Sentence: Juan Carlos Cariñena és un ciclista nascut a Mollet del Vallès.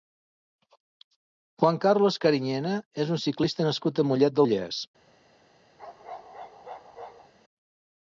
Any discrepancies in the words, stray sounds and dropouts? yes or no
yes